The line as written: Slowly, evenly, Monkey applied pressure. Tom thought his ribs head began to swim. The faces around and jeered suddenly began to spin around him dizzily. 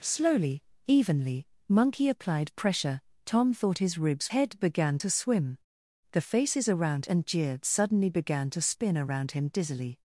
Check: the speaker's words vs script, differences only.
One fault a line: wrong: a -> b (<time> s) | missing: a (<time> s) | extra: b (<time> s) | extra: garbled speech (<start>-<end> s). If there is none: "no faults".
no faults